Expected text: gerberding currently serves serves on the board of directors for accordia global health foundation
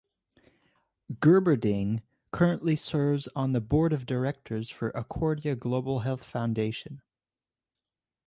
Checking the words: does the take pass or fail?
fail